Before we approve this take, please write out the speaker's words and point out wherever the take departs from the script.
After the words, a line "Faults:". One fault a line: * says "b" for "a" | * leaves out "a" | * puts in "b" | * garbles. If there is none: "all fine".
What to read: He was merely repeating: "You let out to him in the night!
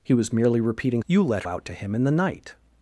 He was merely repeating: "You let out to him in the night!
Faults:
all fine